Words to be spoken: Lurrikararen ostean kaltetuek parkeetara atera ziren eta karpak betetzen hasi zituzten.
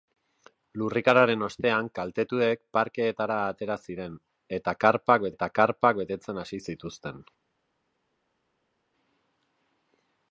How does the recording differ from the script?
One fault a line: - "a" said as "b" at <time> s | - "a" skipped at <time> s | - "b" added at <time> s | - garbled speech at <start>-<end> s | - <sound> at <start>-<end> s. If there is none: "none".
- "eta karpak" added at 5.4 s